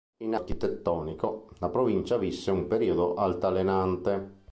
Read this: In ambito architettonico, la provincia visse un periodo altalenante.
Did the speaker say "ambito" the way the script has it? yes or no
no